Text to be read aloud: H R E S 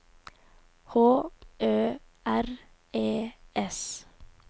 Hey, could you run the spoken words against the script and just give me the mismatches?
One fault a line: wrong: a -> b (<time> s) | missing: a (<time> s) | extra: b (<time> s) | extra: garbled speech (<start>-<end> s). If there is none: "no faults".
extra: Ø (1.6 s)